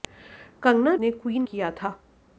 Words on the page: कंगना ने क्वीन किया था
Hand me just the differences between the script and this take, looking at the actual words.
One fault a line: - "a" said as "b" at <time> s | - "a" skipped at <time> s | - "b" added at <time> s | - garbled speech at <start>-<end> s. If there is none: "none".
none